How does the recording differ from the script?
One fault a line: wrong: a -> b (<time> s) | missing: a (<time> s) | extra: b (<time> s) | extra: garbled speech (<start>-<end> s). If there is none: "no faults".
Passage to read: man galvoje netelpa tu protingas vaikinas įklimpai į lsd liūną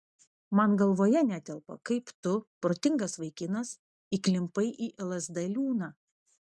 extra: kaip (1.9 s)